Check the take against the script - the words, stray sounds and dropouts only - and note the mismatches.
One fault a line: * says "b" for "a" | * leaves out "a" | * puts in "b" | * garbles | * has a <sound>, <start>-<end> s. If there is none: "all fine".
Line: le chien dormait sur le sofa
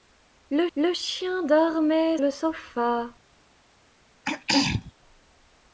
* puts in "le"
* leaves out "sur"
* has a throat clearing, 4.2-4.9 s